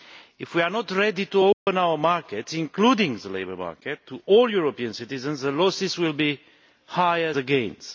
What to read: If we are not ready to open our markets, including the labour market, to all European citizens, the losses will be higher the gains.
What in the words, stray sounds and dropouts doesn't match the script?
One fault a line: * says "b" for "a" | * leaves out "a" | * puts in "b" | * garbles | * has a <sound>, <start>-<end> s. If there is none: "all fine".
* has a dropout, 1.5-1.7 s